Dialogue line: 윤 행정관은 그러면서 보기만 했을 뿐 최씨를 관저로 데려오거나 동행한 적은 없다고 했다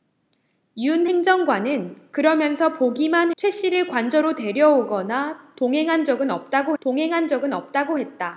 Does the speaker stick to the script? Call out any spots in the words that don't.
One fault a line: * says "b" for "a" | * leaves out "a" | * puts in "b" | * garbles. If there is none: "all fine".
* leaves out "했을 뿐"
* puts in "동행한 적은 없다고"